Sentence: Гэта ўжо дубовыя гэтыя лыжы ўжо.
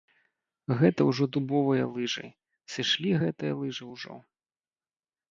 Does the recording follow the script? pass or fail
fail